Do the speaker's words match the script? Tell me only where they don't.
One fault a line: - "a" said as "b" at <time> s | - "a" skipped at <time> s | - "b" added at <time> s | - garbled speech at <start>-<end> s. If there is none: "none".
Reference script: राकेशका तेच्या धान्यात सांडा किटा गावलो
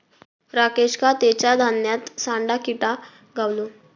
none